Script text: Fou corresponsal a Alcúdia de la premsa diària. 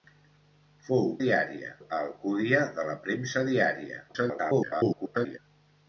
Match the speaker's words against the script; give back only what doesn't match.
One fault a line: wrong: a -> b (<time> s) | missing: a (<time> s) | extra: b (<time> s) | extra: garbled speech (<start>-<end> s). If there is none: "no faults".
wrong: corresponsal -> diària (1.2 s)
extra: garbled speech (4.1-5.4 s)